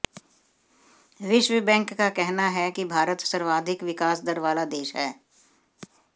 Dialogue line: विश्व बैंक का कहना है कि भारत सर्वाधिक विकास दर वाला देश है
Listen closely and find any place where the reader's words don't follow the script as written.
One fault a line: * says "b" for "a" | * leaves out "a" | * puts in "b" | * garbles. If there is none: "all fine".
all fine